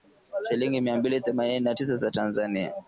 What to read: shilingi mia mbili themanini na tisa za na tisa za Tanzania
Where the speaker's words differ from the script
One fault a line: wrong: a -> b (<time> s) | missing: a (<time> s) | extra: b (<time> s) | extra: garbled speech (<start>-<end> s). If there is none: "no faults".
missing: na tisa za (2.1 s)